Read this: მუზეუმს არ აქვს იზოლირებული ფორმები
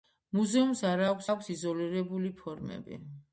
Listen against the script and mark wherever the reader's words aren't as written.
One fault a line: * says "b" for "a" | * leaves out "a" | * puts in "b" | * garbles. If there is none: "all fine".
* puts in "აქვს"